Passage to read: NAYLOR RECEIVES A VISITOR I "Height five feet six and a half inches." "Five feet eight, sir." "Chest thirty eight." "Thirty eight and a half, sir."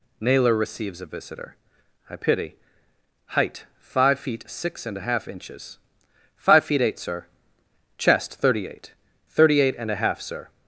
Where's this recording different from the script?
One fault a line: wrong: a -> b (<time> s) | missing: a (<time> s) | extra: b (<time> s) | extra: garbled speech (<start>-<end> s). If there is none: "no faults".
extra: pity (2.1 s)